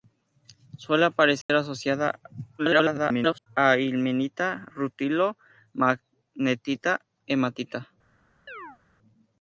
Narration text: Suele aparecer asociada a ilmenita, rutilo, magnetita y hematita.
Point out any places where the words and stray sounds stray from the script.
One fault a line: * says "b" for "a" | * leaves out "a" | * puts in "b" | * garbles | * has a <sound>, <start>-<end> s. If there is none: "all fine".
* has a dropout, 1.4-1.5 s
* garbles
* leaves out "y"
* has a chirp, 8.5-8.8 s